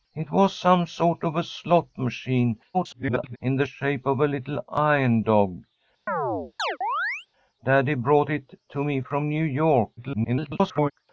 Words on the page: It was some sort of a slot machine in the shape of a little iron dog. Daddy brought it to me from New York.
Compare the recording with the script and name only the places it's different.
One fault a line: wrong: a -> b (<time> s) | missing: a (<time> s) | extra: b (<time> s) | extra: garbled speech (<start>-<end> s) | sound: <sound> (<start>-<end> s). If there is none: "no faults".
extra: garbled speech (2.7-3.4 s)
sound: chirp (6.1-7.3 s)
extra: garbled speech (10.0-10.9 s)